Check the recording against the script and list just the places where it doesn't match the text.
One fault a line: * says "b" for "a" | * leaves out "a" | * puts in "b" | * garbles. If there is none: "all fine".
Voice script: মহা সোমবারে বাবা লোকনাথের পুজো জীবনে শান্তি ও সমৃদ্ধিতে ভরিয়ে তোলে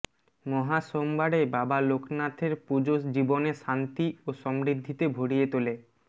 all fine